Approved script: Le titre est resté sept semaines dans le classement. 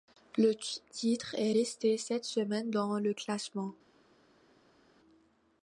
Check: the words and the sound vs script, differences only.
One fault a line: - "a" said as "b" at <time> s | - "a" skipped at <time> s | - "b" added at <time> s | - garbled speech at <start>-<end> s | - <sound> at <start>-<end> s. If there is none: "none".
none